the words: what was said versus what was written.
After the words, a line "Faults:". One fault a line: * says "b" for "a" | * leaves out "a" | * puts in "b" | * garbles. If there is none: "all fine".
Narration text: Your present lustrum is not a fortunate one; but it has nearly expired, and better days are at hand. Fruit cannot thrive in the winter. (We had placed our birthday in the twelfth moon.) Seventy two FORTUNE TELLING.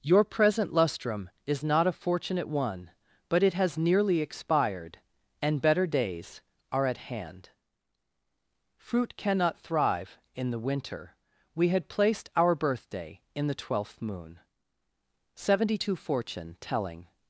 Your present lustrum is not a fortunate one; but it has nearly expired, and better days are at hand. Fruit cannot thrive in the winter. (We had placed our birthday in the twelfth moon.) Seventy two FORTUNE TELLING.
Faults:
all fine